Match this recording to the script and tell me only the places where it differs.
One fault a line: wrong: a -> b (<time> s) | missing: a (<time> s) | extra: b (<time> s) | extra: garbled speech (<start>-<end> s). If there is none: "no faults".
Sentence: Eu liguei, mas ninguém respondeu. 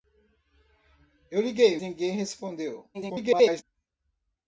missing: mas (1.8 s)
extra: garbled speech (2.9-3.6 s)